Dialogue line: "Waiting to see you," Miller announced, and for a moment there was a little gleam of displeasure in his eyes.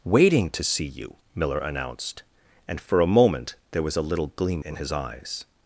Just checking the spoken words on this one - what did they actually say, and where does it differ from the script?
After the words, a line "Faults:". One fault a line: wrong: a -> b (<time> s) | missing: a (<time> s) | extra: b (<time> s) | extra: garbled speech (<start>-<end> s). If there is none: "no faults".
"Waiting to see you," Miller announced, and for a moment there was a little gleam in his eyes.
Faults:
missing: of displeasure (4.6 s)